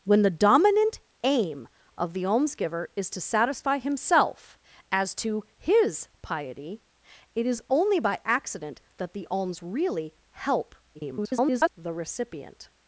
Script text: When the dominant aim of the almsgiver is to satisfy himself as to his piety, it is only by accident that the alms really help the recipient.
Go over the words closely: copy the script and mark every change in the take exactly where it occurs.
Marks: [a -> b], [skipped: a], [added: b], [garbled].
When the dominant aim of the almsgiver is to satisfy himself as to his piety, it is only by accident that the alms really help [garbled] the recipient.